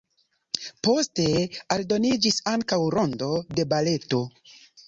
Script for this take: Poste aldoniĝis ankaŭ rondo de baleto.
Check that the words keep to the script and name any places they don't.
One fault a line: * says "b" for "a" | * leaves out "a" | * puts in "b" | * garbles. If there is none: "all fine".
all fine